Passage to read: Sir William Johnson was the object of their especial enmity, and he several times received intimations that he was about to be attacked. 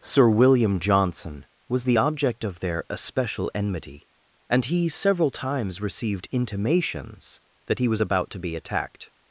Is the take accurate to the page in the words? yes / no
yes